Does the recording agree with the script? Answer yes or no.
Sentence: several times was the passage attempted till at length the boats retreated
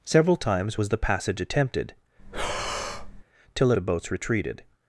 no